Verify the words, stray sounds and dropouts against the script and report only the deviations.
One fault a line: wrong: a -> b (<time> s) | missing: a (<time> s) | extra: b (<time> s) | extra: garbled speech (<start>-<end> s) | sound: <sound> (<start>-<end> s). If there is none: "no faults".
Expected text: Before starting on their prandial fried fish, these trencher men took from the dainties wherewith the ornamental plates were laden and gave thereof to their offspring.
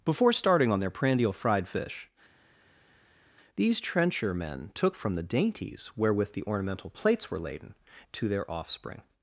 missing: and gave thereof (7.7 s)